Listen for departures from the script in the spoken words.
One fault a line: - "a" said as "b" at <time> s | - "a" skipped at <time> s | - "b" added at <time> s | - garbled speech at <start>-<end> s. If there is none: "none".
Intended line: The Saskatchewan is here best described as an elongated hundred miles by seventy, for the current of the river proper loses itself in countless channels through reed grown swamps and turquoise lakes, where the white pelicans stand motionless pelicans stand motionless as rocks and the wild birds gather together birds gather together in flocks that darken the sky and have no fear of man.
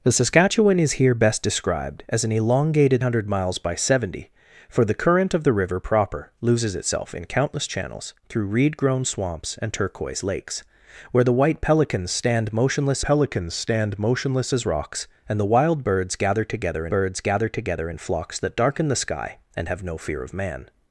none